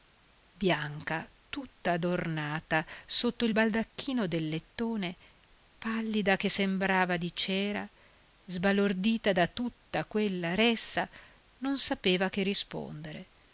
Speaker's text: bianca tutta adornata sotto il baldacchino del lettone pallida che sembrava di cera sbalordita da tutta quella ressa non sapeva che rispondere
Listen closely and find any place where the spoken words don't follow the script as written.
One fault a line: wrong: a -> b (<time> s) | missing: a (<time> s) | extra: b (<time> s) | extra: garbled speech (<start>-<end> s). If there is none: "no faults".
no faults